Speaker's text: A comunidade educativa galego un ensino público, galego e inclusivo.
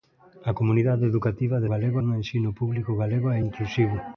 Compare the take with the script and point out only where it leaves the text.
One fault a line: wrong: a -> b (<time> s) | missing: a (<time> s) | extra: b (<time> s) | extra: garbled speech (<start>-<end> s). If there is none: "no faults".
no faults